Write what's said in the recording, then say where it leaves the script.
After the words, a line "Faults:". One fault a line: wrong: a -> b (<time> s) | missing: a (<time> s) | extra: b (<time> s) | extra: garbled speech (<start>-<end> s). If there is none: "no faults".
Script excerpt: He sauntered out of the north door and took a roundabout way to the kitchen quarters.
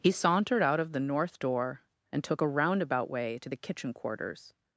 He sauntered out of the north door and took a roundabout way to the kitchen quarters.
Faults:
no faults